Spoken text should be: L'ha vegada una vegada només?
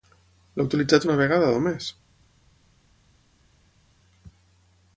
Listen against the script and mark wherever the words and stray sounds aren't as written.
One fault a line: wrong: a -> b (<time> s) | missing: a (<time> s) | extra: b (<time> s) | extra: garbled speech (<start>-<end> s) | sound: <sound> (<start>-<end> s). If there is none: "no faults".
wrong: vegada -> utilitzat (0.7 s)